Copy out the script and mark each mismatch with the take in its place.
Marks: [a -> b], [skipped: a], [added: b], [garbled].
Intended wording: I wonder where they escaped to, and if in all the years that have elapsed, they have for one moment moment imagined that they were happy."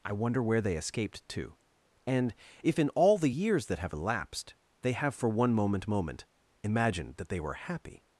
I wonder where they escaped to, and if in all the years that have elapsed, they have for one moment moment imagined that they were happy."